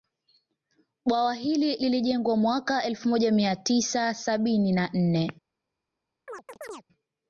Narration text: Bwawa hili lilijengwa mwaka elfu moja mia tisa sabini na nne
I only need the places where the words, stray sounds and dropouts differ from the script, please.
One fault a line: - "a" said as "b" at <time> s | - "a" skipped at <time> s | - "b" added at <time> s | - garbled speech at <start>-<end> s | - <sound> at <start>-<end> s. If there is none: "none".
- chirp at 6.3-6.9 s